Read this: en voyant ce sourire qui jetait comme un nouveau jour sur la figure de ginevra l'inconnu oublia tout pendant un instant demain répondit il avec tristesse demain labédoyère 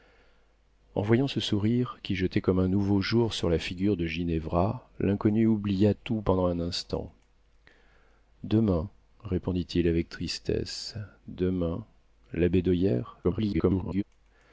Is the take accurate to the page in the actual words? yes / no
no